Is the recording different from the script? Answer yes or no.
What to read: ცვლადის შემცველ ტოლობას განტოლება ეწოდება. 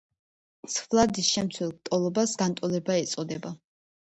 no